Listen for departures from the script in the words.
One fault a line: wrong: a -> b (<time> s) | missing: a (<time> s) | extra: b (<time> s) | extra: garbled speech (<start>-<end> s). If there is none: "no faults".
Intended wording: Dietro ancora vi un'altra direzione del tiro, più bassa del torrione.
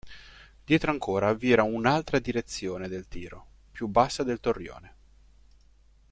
extra: era (1.5 s)